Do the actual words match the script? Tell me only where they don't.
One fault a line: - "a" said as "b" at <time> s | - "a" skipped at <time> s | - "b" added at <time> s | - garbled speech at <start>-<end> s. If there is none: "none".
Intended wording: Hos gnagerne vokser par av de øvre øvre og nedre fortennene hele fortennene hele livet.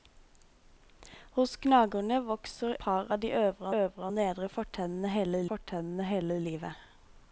none